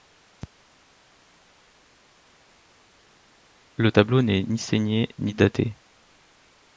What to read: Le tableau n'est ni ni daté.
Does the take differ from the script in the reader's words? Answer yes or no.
yes